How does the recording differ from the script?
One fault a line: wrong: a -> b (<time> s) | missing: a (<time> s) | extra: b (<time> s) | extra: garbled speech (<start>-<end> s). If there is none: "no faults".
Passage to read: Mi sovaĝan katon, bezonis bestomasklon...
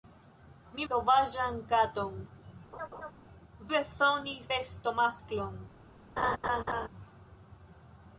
no faults